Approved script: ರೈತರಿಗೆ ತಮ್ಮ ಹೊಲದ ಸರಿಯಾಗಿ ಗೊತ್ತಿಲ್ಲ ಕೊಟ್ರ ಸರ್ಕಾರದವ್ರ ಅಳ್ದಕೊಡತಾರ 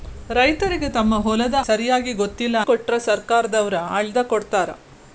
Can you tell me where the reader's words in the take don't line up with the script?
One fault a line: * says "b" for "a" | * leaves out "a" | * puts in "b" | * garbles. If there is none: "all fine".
all fine